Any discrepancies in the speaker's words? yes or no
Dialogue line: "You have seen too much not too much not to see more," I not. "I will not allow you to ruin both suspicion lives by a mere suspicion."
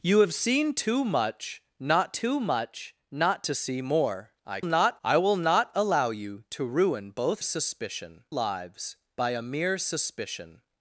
no